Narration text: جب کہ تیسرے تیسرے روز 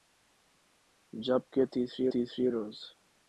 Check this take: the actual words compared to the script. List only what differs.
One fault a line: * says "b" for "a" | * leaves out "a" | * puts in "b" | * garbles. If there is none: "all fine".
all fine